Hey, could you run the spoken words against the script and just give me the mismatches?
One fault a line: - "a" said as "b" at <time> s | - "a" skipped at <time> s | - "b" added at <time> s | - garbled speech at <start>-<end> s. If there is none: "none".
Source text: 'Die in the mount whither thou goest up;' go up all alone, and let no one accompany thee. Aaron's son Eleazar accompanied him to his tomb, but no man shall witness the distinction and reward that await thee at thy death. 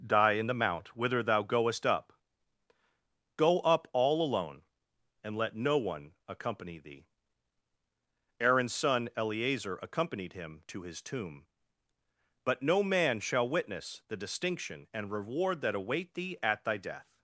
none